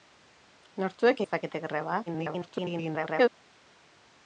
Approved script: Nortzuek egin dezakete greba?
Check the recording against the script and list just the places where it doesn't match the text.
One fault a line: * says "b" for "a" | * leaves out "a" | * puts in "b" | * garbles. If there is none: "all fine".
* leaves out "egin"
* garbles